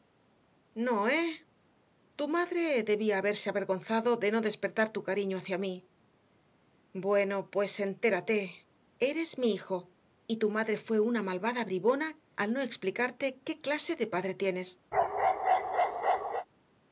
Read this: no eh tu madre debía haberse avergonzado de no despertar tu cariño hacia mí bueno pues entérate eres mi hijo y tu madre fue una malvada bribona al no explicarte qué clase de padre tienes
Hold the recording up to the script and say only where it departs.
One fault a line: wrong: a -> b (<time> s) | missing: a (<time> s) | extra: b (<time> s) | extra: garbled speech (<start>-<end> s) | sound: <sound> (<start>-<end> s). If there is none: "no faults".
sound: bark (14.9-16.5 s)